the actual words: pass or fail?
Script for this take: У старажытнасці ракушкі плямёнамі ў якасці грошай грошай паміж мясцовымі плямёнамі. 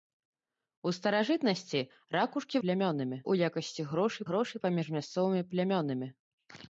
pass